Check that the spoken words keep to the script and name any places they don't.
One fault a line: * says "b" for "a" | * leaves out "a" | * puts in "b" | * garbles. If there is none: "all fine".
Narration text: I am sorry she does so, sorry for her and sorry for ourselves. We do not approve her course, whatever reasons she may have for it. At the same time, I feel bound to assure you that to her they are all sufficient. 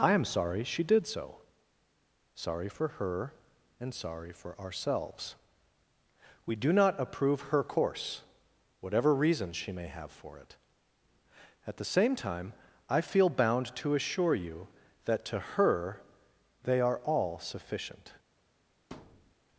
* says "did" for "does"